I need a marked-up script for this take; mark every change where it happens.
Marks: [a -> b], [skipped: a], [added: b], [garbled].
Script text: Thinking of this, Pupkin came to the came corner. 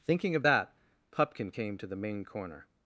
Thinking of [this, -> that] Pupkin came to the [came -> main] corner.